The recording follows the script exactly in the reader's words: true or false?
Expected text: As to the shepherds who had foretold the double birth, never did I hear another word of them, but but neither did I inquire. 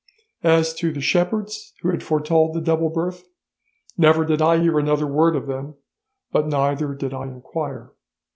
false